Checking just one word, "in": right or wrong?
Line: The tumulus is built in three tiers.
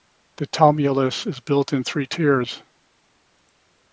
right